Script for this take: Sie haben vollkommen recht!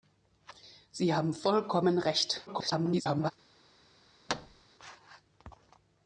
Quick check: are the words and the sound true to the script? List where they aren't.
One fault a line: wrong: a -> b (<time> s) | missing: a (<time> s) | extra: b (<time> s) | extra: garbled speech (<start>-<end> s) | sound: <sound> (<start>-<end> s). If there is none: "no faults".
extra: garbled speech (2.5-3.3 s)
sound: thud (4.3-4.6 s)